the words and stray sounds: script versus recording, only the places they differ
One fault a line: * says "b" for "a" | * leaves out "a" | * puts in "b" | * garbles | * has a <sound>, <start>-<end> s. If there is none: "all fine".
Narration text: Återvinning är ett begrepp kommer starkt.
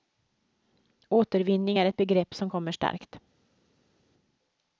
* puts in "som"